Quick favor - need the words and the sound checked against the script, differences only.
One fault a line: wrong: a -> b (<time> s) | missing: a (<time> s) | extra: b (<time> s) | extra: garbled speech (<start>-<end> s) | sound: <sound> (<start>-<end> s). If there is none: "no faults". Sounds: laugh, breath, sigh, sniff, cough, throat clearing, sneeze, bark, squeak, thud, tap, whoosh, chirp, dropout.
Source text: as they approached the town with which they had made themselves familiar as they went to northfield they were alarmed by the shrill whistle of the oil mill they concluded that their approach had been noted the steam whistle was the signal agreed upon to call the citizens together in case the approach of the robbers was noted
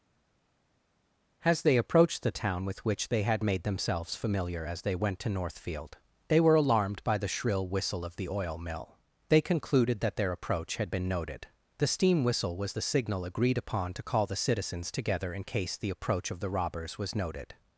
no faults